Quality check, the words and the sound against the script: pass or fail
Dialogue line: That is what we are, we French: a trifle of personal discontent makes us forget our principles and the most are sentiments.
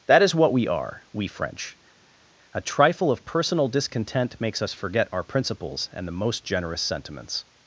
fail